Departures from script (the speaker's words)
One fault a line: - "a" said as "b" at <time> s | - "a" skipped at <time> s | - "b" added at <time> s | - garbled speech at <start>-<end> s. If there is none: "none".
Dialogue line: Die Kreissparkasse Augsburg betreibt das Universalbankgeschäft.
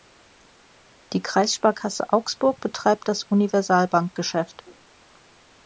none